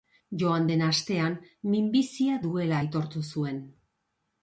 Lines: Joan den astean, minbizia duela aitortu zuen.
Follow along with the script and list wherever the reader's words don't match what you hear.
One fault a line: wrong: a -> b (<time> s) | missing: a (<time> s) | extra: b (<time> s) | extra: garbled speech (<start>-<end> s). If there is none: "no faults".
no faults